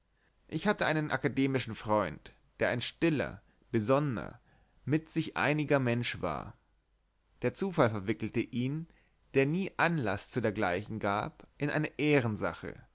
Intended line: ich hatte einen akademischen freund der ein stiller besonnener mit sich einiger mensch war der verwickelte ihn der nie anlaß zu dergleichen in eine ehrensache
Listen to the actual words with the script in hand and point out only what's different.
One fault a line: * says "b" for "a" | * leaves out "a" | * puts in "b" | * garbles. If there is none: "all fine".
* puts in "zufall"
* puts in "gab"